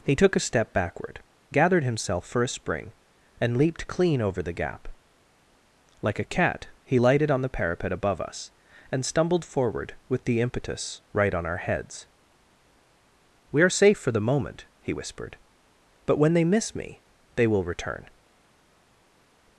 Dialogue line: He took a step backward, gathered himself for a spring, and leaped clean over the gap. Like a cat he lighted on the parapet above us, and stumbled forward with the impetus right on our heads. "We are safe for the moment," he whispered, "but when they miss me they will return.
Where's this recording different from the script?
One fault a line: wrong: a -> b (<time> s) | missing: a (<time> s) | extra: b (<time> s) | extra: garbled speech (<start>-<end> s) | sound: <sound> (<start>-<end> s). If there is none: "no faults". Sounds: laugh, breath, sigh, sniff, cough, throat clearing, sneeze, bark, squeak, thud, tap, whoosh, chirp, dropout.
no faults